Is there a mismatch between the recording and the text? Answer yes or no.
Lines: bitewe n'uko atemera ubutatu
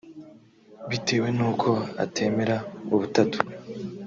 no